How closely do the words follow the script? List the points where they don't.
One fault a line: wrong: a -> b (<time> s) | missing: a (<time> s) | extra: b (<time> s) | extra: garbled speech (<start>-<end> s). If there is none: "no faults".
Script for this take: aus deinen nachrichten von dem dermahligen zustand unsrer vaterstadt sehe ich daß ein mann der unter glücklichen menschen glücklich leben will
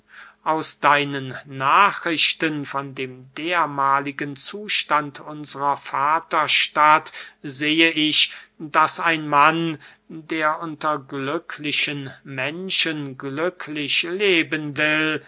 no faults